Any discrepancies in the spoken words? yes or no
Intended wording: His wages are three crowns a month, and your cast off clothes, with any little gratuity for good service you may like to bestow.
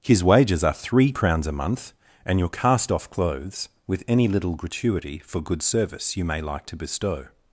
no